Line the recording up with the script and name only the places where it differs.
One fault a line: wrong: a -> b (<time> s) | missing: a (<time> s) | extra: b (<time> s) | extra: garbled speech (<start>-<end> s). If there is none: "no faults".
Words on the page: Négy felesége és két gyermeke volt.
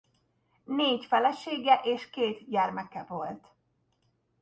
no faults